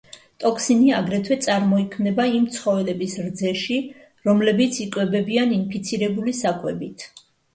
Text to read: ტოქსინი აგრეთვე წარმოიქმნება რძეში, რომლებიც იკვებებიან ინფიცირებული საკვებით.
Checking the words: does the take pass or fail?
fail